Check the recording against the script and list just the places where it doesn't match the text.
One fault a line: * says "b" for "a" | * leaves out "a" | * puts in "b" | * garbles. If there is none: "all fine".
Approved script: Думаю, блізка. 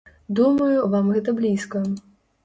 * puts in "вам гэта"